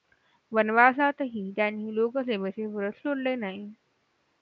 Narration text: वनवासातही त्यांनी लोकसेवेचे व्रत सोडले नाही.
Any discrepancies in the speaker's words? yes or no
no